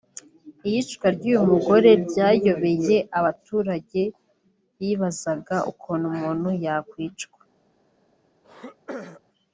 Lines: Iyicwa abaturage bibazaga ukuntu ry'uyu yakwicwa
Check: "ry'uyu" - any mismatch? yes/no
yes